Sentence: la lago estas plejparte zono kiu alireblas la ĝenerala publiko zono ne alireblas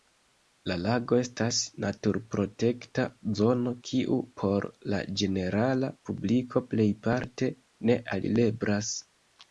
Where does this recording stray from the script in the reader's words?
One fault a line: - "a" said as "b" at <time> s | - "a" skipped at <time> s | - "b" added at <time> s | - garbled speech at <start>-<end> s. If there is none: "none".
- "plejparte" said as "naturprotekta" at 1.9 s
- "alireblas" said as "por" at 4.4 s
- "zono" said as "plejparte" at 6.7 s